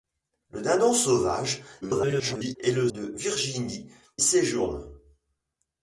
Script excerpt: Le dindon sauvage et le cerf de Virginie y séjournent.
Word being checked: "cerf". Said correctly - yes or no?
no